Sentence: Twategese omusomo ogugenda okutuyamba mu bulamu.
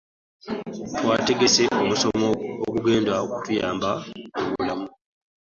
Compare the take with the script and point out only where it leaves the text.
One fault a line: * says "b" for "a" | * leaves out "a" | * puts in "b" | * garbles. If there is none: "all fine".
all fine